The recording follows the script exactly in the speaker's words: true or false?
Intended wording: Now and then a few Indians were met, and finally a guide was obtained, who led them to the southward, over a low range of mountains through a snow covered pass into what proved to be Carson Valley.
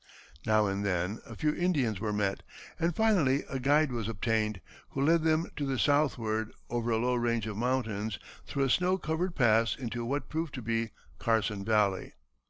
true